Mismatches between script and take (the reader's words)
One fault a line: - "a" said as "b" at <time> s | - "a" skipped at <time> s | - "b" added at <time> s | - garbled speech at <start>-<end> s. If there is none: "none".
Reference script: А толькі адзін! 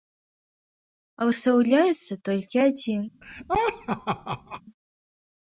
- "выстаўляецца" added at 1.3 s